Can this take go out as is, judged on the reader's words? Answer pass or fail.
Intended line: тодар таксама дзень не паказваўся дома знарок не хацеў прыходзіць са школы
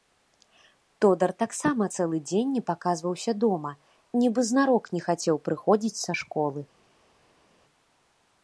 fail